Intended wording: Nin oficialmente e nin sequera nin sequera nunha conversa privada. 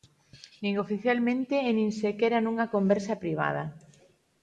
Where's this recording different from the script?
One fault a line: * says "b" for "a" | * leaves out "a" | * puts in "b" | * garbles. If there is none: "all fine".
* leaves out "nin sequera"